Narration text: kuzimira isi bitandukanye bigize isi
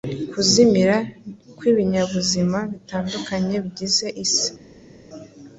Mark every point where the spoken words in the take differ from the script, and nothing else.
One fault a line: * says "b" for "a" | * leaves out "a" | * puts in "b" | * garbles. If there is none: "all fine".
* says "kw'ibinyabuzima" for "isi"